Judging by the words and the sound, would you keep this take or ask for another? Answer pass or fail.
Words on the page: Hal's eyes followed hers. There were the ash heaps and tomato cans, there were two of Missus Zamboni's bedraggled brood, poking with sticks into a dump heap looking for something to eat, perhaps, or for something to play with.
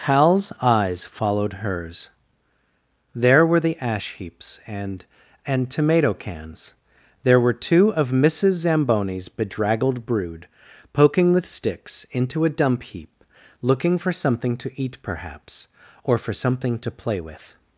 fail